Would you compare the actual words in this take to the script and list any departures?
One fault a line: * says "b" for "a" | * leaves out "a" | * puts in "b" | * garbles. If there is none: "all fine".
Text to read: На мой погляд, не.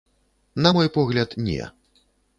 all fine